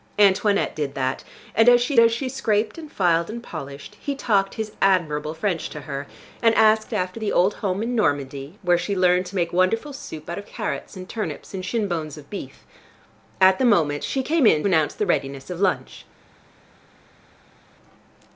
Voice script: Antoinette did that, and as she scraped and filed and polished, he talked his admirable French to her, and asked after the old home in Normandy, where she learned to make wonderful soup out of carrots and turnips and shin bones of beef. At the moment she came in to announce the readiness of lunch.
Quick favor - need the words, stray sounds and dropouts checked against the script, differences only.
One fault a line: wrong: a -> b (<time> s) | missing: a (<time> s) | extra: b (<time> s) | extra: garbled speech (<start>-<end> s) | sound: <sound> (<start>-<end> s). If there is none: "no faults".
extra: as she (2.0 s)
missing: to (14.6 s)